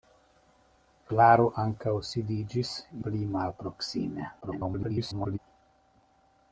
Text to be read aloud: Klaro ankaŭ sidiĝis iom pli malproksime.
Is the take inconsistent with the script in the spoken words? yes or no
yes